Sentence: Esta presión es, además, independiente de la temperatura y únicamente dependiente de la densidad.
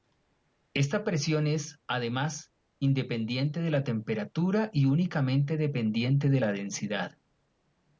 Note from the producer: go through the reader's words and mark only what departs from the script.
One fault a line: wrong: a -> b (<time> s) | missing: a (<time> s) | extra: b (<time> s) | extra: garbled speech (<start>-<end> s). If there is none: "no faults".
no faults